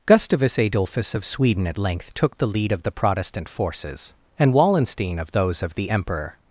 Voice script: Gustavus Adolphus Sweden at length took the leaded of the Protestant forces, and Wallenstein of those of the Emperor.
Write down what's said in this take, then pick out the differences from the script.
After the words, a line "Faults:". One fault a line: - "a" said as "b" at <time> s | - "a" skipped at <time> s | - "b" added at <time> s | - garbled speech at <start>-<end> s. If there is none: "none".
Gustavus Adolphus of Sweden at length took the lead of the Protestant forces, and Wallenstein of those of the Emperor.
Faults:
- "of" added at 1.1 s
- "leaded" said as "lead" at 2.5 s